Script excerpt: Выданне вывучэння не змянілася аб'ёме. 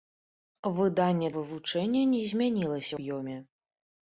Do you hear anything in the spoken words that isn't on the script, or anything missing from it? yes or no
no